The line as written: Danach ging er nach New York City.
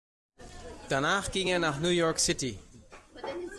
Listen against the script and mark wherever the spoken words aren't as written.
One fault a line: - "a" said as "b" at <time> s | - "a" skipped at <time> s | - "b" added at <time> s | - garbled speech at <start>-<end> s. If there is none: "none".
none